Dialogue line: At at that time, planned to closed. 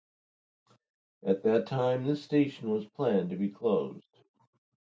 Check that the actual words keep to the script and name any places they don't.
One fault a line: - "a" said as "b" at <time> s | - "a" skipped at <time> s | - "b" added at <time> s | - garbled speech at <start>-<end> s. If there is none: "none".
- "at" skipped at 1.4 s
- "this station was" added at 2.1 s
- "be" added at 3.4 s